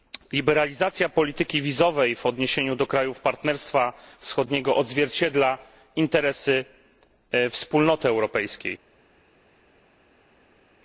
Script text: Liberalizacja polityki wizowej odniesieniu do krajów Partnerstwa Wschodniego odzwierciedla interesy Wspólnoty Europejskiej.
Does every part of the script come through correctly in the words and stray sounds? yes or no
no